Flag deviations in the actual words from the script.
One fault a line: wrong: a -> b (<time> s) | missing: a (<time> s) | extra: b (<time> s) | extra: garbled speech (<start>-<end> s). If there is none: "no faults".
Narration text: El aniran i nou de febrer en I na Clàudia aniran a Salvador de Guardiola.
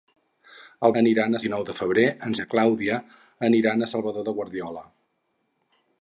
no faults